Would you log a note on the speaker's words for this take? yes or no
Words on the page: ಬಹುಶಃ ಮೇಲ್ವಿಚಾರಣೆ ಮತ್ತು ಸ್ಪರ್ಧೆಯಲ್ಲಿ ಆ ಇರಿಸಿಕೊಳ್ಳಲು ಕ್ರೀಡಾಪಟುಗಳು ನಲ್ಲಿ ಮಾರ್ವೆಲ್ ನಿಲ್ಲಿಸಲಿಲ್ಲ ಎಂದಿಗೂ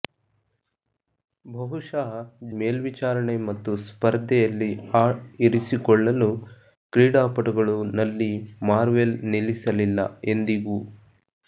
no